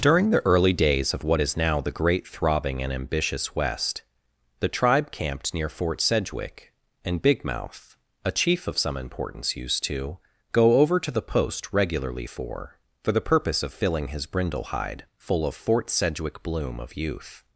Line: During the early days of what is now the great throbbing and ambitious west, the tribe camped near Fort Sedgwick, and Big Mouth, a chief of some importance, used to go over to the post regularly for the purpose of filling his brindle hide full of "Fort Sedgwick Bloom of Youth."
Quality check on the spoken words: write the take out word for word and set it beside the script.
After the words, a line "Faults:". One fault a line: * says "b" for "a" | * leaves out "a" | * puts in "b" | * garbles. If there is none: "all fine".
During the early days of what is now the great throbbing and ambitious west, the tribe camped near Fort Sedgwick, and Big Mouth, a chief of some importance, used to go over to the post regularly for for the purpose of filling his brindle hide full of "Fort Sedgwick Bloom of Youth."
Faults:
* puts in "for"